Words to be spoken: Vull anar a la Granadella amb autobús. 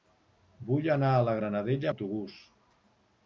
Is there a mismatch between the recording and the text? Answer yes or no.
yes